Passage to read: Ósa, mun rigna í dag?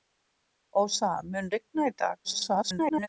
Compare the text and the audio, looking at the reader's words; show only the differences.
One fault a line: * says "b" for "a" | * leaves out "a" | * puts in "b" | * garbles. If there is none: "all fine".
* garbles